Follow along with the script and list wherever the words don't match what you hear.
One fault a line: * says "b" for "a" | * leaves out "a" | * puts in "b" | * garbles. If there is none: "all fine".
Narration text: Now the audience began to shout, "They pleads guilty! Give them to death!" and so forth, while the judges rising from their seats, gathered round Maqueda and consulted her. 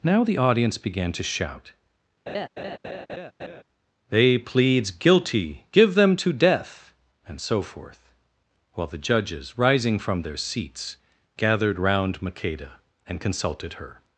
all fine